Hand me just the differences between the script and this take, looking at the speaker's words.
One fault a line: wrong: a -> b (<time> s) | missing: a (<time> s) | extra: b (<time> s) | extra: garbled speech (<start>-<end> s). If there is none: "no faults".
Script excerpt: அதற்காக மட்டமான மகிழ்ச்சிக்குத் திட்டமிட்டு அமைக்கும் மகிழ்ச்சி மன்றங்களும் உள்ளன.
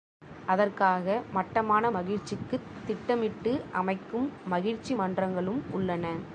no faults